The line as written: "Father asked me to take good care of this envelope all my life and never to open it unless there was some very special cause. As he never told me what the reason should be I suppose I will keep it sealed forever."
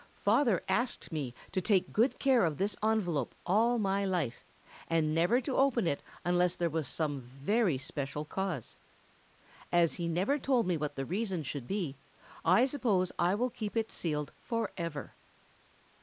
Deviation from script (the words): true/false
false